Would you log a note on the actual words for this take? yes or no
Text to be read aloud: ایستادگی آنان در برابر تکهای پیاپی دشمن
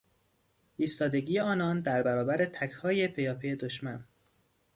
no